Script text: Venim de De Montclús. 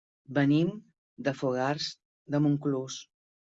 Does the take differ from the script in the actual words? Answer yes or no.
yes